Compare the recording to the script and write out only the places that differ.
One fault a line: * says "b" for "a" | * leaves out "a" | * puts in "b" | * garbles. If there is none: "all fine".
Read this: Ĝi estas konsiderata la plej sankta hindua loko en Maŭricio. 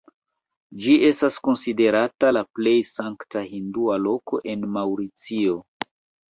all fine